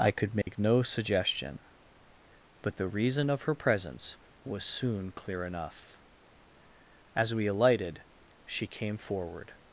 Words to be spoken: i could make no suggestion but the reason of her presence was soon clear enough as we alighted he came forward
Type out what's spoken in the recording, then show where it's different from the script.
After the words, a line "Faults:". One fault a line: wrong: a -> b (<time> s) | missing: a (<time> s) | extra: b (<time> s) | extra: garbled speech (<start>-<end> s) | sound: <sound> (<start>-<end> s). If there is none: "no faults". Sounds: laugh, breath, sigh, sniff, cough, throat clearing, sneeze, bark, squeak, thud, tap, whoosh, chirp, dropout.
i could make no suggestion but the reason of her presence was soon clear enough as we alighted she came forward
Faults:
sound: dropout (0.4-0.5 s)
wrong: he -> she (8.5 s)